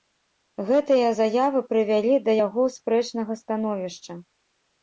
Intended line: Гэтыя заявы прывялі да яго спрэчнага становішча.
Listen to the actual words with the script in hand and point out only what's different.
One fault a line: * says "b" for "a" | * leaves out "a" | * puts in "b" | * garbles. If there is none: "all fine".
all fine